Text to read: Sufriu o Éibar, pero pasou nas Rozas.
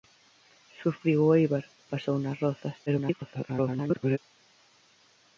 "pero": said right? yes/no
no